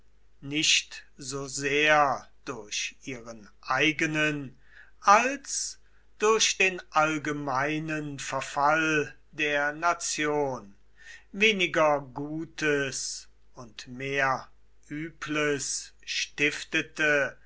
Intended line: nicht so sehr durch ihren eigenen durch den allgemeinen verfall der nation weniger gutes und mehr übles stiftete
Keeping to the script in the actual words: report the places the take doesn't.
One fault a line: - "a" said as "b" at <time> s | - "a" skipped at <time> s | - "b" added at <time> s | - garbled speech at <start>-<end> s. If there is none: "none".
- "als" added at 5.0 s